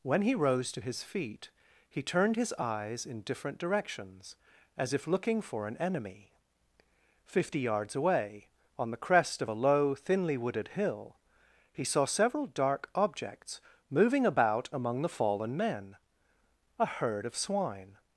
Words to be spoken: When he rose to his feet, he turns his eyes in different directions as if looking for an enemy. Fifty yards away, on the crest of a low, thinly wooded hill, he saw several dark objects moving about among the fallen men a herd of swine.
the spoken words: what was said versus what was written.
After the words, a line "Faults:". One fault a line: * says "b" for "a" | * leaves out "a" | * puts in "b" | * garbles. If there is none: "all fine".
When he rose to his feet, he turned his eyes in different directions as if looking for an enemy. Fifty yards away, on the crest of a low, thinly wooded hill, he saw several dark objects moving about among the fallen men a herd of swine.
Faults:
* says "turned" for "turns"